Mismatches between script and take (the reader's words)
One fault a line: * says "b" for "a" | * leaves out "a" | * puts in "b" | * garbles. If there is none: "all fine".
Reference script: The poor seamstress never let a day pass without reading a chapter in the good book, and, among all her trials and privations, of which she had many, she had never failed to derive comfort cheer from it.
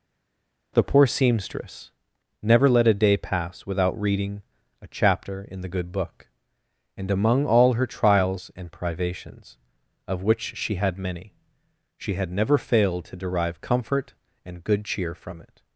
* puts in "and good"